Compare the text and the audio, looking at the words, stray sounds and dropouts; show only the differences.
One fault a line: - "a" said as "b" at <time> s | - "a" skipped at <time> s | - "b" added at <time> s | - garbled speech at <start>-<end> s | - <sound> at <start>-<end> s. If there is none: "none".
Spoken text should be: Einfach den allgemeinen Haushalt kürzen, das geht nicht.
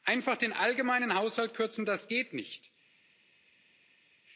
none